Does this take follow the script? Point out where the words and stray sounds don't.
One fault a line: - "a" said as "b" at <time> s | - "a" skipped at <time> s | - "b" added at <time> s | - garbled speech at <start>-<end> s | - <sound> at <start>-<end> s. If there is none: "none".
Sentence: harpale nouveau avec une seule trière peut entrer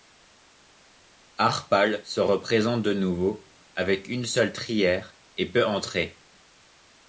- "se représente de" added at 2.0 s
- "et" added at 5.4 s